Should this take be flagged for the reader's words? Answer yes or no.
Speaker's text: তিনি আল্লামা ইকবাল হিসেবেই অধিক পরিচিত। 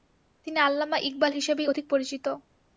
no